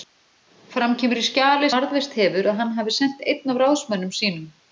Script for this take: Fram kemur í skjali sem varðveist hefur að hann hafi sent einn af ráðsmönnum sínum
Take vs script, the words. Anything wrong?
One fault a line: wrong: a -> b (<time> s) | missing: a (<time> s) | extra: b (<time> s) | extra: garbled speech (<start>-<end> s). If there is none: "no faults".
missing: sem (1.7 s)